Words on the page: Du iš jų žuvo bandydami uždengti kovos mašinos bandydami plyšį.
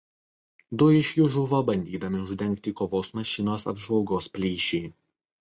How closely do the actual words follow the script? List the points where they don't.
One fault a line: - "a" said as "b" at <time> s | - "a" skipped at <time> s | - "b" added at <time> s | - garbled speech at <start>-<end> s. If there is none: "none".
- "bandydami" said as "apžvalgos" at 3.7 s